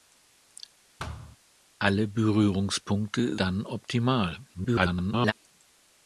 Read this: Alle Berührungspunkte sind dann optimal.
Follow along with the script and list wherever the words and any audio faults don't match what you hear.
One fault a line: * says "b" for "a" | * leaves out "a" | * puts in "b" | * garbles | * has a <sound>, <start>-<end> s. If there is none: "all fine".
* has a thud, 1.0-1.4 s
* leaves out "sind"
* garbles